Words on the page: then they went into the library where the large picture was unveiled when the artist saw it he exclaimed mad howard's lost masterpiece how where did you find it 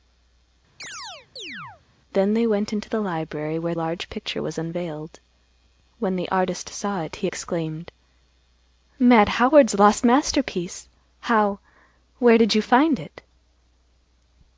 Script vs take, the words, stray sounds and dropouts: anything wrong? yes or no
yes